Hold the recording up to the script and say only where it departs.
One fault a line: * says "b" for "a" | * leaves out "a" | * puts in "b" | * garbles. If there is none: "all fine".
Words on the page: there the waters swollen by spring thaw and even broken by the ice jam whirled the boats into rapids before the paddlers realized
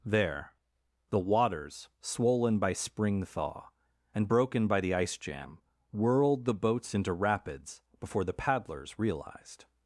* leaves out "even"